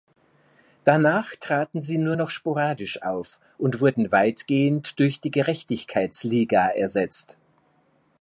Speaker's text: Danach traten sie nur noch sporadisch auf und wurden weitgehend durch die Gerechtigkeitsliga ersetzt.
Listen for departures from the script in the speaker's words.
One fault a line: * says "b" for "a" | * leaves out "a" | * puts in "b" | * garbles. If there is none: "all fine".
all fine